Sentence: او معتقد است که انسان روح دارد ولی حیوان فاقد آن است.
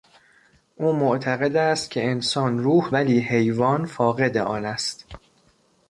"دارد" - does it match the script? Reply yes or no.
no